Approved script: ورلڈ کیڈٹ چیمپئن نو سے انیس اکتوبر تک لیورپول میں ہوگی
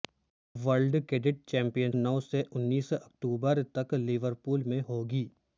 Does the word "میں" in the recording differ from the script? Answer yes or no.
no